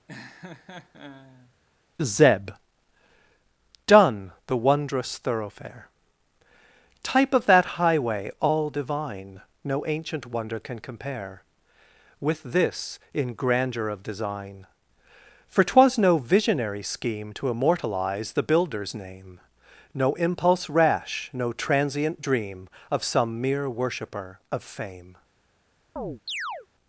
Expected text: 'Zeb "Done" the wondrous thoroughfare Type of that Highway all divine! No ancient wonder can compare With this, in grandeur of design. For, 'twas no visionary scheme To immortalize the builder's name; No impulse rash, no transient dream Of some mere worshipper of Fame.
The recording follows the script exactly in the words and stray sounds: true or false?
false